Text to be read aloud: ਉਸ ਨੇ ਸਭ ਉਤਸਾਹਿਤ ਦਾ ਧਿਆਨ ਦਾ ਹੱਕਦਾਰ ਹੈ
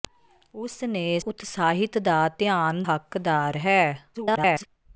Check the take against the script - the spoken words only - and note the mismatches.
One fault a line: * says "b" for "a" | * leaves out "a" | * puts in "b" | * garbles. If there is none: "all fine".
* leaves out "ਸਭ"
* leaves out "ਦਾ"
* garbles